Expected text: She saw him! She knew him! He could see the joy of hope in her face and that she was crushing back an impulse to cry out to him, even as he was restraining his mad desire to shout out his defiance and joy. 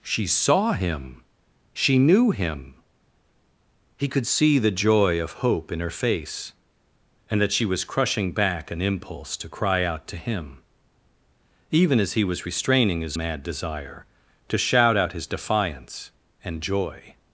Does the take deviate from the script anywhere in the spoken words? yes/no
no